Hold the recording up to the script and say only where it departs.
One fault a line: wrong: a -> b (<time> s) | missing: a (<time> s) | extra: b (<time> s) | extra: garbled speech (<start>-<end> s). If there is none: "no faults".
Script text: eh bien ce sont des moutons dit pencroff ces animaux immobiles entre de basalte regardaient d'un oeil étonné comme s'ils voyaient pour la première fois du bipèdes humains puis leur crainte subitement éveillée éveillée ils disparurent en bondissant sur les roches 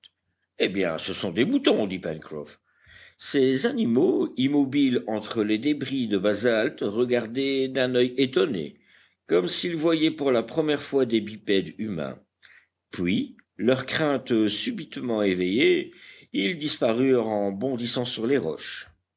extra: les débris (5.4 s)
wrong: du -> des (11.0 s)
missing: éveillée (15.9 s)